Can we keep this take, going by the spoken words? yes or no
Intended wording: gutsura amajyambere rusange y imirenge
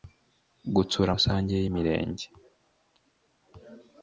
no